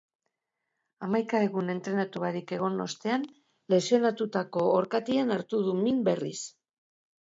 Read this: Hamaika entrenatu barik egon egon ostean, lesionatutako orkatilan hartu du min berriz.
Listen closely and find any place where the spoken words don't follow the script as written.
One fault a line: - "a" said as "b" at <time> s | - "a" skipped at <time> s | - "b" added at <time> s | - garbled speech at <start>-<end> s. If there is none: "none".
- "egun" added at 1.5 s
- "egon" skipped at 2.8 s